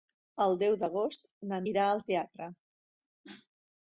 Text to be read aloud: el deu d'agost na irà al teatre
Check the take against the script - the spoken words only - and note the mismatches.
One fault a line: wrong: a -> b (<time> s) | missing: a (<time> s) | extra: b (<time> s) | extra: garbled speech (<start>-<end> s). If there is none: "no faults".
no faults